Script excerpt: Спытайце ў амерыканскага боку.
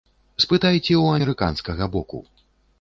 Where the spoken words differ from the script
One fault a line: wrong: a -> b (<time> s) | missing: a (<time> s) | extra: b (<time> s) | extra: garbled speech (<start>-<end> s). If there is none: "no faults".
no faults